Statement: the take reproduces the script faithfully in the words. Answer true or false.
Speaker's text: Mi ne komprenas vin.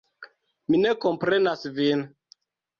true